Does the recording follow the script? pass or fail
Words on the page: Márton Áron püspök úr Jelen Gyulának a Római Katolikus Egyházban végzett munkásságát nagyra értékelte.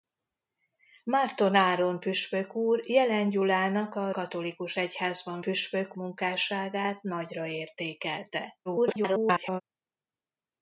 fail